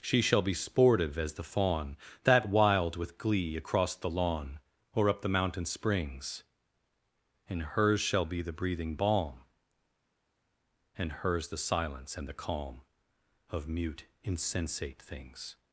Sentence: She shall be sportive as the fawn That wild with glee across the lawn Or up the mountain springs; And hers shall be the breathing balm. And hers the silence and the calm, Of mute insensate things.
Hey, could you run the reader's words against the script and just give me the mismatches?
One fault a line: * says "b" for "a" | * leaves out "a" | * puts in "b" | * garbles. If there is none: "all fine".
all fine